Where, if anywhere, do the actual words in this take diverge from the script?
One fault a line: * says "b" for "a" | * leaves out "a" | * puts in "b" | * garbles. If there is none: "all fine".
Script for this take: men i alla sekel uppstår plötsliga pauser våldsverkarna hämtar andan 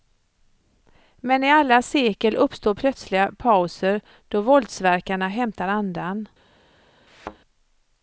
* puts in "då"